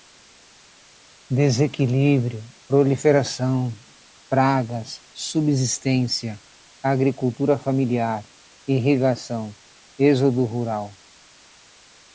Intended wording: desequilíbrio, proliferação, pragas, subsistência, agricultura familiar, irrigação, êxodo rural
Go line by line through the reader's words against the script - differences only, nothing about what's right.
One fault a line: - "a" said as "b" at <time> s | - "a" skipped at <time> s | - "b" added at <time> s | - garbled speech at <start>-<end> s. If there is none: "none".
none